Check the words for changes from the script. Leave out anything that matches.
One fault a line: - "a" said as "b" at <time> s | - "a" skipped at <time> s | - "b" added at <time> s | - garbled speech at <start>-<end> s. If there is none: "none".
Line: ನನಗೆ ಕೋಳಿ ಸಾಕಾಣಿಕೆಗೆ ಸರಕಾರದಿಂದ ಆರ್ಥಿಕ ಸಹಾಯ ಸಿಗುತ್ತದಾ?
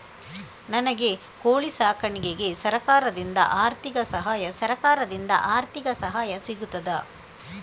- "ಸರಕಾರದಿಂದ ಆರ್ಥಿಕ ಸಹಾಯ" added at 4.5 s